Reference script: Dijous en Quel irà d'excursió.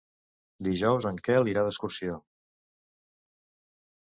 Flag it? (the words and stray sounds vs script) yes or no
no